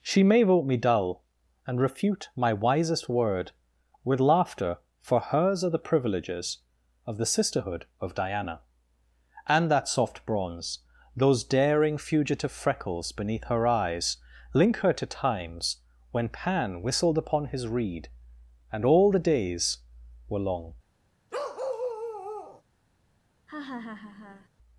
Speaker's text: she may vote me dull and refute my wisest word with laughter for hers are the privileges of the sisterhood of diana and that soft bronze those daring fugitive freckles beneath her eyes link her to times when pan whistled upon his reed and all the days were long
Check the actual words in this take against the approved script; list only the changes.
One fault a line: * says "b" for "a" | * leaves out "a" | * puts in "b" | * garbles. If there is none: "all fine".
all fine